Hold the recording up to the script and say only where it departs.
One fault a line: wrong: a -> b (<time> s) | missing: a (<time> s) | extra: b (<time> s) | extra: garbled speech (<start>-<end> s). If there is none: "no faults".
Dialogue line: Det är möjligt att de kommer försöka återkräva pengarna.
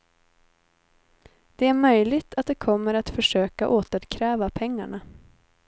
extra: att (2.9 s)